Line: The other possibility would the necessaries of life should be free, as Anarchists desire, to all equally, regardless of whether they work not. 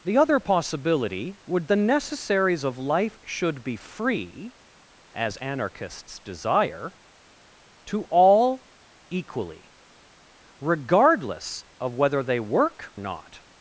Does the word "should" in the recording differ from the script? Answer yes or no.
no